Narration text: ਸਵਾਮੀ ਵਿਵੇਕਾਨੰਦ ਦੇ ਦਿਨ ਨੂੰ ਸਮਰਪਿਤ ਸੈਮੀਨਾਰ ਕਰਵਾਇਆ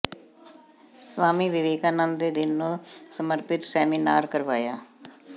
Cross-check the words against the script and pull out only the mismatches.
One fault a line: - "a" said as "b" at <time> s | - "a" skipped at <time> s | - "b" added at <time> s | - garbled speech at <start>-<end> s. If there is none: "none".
none